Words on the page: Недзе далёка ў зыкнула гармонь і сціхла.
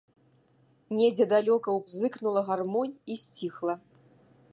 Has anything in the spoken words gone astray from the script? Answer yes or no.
no